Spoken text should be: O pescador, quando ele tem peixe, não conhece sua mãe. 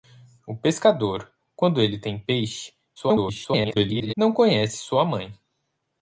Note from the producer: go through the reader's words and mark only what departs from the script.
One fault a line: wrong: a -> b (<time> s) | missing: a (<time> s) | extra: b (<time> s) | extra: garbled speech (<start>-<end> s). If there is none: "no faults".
extra: garbled speech (3.0-4.1 s)